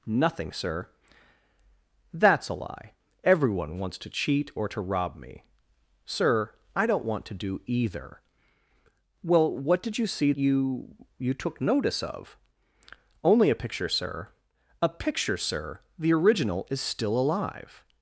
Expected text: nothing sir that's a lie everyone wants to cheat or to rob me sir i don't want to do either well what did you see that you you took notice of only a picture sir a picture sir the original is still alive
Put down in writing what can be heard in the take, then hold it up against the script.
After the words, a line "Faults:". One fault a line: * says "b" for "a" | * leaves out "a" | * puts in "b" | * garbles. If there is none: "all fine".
nothing sir that's a lie everyone wants to cheat or to rob me sir i don't want to do either well what did you see you you took notice of only a picture sir a picture sir the original is still alive
Faults:
* leaves out "that"